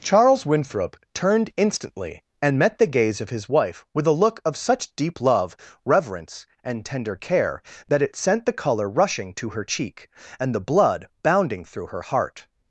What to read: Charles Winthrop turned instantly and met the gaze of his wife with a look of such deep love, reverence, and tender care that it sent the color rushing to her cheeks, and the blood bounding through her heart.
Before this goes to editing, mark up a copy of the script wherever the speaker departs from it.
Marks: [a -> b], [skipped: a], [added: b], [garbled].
Charles Winthrop turned instantly and met the gaze of his wife with a look of such deep love, reverence, and tender care that it sent the color rushing to her [cheeks, -> cheek] and the blood bounding through her heart.